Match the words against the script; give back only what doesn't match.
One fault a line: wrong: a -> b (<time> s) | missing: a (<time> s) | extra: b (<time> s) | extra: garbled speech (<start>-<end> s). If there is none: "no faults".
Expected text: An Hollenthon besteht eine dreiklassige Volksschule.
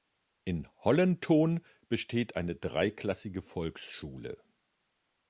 wrong: An -> In (0.5 s)